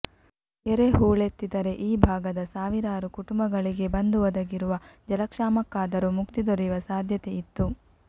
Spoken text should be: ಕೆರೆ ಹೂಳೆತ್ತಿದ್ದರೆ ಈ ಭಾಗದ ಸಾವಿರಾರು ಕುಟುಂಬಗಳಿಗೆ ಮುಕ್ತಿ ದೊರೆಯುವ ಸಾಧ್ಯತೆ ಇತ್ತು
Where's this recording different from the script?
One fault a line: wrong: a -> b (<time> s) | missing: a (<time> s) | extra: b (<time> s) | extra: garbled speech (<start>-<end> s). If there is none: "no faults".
extra: ಬಂದು ಒದಗಿರುವ ಜಲಕ್ಷಾಮಕ್ಕಾದರೂ (3.9 s)